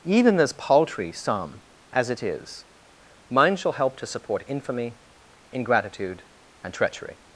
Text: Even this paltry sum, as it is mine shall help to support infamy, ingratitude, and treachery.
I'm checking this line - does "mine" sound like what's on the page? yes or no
yes